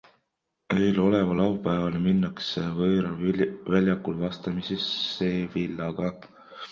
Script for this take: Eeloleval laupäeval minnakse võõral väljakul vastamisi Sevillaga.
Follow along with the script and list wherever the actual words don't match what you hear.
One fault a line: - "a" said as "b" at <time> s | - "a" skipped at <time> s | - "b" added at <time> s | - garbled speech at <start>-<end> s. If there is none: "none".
none